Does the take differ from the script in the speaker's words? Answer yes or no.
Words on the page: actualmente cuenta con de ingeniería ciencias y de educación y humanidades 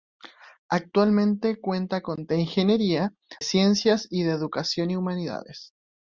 no